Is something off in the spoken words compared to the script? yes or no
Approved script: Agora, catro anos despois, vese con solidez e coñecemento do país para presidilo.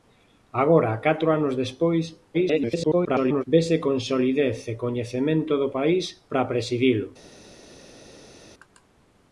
yes